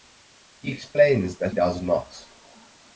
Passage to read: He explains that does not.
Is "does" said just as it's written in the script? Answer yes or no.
yes